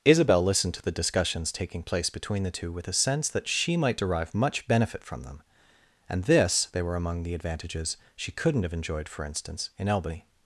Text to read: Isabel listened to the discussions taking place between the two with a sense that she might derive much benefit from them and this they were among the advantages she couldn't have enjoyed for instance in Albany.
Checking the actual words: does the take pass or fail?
pass